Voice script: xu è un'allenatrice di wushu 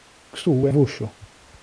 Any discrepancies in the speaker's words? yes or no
yes